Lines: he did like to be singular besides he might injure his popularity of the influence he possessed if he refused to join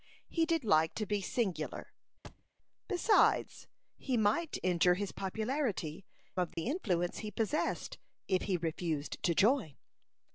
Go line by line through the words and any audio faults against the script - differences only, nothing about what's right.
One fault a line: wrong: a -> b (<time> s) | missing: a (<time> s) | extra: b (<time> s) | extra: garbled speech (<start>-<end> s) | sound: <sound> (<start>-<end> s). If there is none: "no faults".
sound: thud (2.2-2.5 s)
sound: dropout (6.5-6.6 s)